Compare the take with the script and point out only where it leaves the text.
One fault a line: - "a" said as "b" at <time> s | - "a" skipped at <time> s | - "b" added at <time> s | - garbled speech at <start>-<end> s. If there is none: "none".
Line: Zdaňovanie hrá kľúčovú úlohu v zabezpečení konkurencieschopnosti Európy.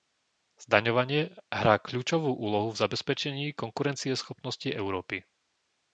none